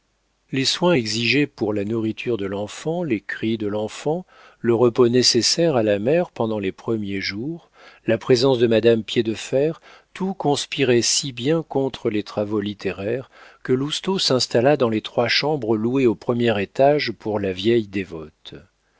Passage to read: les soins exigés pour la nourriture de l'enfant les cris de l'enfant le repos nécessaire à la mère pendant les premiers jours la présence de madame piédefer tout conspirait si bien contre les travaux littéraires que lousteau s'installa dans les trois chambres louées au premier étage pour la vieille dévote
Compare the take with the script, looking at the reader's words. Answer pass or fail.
pass